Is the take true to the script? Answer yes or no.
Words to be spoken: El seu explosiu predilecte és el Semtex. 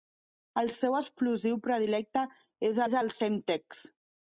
no